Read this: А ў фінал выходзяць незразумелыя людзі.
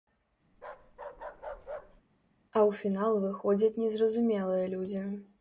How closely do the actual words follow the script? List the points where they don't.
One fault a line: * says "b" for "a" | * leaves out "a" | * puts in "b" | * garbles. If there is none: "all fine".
all fine